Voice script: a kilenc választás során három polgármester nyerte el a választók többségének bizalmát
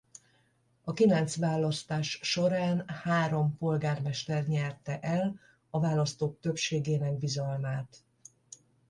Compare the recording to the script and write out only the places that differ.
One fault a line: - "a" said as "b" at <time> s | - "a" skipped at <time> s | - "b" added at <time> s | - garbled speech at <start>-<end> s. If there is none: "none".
none